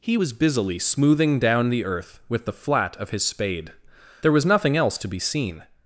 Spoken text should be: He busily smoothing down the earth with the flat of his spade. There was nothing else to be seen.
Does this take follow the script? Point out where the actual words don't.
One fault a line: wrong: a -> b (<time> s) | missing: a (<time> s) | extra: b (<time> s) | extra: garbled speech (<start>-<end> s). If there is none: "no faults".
extra: was (0.1 s)